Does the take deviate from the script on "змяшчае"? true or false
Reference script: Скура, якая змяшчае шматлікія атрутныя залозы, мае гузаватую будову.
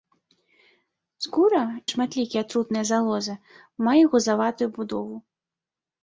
true